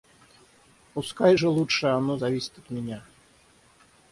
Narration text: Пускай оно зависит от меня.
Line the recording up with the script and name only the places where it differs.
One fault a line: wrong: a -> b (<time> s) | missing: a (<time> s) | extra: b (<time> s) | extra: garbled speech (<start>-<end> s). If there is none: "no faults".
extra: же лучше (1.3 s)